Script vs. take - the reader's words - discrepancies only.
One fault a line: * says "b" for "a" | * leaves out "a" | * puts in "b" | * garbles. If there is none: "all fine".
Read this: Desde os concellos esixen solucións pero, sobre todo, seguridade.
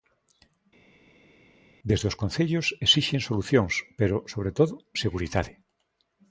all fine